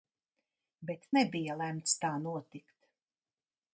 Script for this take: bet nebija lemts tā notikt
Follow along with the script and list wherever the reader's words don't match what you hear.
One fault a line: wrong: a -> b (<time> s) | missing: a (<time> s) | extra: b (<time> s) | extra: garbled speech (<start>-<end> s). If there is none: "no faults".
no faults